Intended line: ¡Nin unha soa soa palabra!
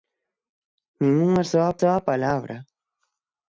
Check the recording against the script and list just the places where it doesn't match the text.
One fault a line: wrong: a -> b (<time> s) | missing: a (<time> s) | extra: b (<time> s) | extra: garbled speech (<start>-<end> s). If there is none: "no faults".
no faults